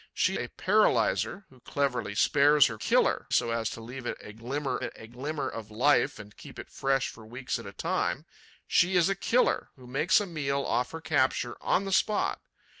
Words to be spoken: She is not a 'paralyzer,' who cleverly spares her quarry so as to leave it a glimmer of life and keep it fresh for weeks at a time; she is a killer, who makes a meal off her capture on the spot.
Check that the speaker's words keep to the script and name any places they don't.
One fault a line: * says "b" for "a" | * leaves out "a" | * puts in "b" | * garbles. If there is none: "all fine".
* leaves out "is not"
* says "killer" for "quarry"
* puts in "it a glimmer"